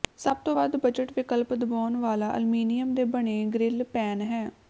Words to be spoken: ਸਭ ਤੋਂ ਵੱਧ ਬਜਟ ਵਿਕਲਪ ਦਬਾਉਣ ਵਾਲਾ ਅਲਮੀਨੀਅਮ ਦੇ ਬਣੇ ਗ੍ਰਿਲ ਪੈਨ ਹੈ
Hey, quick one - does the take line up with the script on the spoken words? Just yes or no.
yes